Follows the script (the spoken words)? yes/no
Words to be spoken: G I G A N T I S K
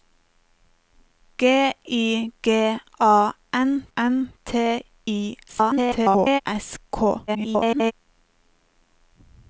no